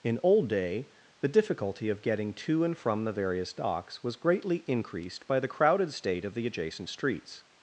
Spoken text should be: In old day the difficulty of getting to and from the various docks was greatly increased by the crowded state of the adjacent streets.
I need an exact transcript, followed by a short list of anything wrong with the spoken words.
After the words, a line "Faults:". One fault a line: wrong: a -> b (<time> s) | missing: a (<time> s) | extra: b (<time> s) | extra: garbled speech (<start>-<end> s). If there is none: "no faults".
In old day the difficulty of getting to and from the various docks was greatly increased by the crowded state of the adjacent streets.
Faults:
no faults